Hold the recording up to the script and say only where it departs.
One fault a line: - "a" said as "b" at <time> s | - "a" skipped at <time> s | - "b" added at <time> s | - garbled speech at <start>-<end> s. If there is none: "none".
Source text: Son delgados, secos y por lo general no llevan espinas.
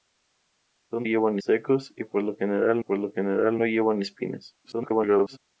- "delgados" said as "llevan" at 1.0 s
- "por lo general" added at 2.8 s
- garbled speech at 4.6-5.4 s